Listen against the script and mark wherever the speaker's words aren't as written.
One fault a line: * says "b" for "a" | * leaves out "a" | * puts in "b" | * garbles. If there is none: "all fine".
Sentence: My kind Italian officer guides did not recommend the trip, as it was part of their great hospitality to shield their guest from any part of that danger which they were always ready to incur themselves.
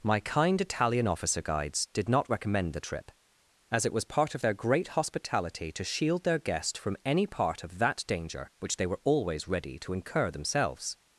all fine